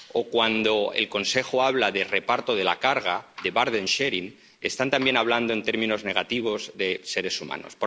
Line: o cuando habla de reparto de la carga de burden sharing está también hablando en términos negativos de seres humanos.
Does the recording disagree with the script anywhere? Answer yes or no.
yes